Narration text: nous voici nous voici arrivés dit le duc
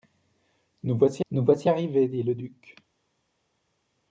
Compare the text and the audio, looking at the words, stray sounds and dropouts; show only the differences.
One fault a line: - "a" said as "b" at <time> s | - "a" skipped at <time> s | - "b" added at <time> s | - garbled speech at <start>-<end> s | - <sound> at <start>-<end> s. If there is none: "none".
none